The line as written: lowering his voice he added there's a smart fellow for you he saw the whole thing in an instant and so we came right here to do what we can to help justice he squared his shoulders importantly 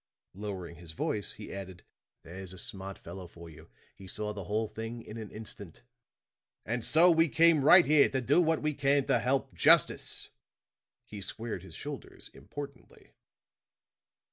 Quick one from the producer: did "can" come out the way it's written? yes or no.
yes